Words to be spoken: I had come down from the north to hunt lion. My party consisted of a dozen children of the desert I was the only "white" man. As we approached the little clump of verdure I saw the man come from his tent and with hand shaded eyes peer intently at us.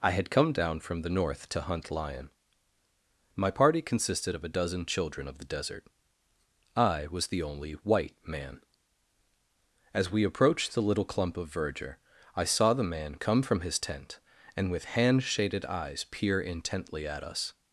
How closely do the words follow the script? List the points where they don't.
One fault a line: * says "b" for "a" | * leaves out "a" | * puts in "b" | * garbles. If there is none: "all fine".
all fine